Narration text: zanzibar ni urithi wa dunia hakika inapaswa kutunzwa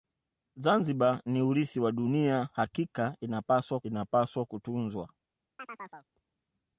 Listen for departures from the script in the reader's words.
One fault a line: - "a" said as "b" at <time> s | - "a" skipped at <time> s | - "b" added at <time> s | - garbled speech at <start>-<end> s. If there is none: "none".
- "inapaswa" added at 3.8 s